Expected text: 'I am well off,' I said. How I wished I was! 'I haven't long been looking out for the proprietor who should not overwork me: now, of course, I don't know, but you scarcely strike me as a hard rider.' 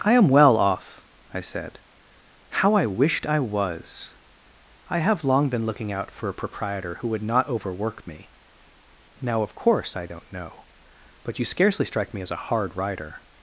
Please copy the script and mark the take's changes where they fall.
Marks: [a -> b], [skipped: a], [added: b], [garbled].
'I am well off,' I said. How I wished I was! 'I [haven't -> have] long been looking out for [the -> a] proprietor who [should -> would] not overwork me: now, of course, I don't know, but you scarcely strike me as a hard rider.'